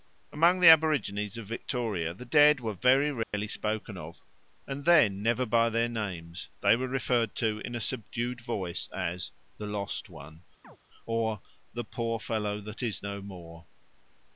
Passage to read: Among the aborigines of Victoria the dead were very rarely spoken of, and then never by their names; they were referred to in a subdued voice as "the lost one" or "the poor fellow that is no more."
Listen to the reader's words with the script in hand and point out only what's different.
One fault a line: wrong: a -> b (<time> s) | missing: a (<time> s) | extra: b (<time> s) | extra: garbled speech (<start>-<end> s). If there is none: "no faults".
no faults